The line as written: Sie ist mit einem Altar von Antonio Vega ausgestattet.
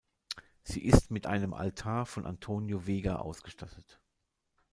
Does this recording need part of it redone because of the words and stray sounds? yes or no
no